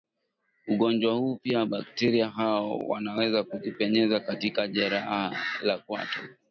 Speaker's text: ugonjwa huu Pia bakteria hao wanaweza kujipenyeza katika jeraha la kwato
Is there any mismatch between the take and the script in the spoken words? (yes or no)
no